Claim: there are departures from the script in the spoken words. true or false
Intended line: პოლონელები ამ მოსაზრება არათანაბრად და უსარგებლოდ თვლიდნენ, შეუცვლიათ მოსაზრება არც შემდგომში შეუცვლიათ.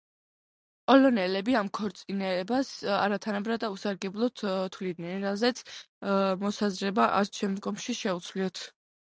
true